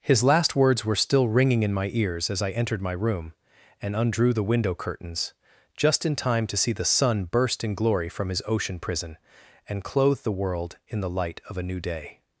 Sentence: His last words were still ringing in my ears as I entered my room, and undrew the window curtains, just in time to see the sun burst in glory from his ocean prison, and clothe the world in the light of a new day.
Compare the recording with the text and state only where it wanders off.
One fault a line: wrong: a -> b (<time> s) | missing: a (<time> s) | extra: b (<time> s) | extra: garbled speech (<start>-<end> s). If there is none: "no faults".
no faults